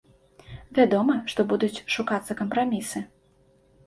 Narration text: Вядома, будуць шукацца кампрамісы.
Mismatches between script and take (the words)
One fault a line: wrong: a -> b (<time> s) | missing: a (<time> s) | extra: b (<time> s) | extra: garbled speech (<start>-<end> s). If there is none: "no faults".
extra: што (1.3 s)